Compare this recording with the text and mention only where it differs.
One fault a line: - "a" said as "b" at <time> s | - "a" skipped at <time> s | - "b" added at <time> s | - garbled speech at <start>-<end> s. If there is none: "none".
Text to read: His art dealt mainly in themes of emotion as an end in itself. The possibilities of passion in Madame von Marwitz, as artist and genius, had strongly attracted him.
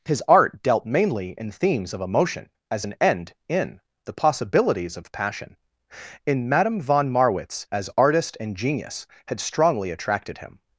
- "itself" skipped at 3.8 s